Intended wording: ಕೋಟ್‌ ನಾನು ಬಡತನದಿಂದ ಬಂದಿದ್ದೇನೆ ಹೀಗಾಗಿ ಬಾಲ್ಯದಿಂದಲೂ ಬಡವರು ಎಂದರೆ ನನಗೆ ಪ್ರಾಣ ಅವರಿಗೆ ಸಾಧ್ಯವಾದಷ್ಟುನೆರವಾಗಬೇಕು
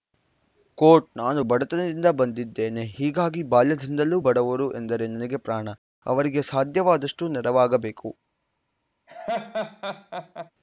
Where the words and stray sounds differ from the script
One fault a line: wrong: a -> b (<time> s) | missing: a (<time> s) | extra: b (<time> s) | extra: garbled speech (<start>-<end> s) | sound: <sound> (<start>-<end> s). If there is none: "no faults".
sound: laugh (9.1-10.5 s)